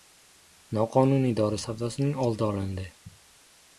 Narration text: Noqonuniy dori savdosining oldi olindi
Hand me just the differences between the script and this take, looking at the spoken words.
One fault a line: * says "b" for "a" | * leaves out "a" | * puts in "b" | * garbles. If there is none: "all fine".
all fine